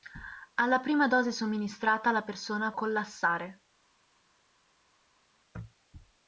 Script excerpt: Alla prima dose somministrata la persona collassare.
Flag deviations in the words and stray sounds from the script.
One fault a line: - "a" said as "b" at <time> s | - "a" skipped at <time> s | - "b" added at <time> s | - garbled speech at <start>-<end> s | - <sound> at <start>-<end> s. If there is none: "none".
none